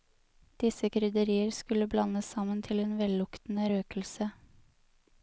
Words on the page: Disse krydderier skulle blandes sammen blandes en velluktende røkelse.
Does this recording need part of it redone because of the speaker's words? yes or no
yes